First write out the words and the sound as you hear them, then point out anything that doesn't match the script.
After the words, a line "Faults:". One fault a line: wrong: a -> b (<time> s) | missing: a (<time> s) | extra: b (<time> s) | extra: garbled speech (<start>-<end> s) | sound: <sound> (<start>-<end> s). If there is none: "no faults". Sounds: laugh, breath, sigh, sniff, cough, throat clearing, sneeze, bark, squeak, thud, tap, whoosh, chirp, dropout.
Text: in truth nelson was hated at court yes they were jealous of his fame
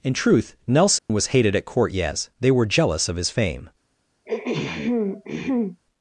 in truth nelson was hated at court yes they were jealous of his fame
Faults:
sound: dropout (1.0-1.1 s)
sound: throat clearing (4.3-5.8 s)